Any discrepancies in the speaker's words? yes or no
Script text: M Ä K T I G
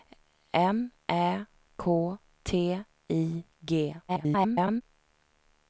yes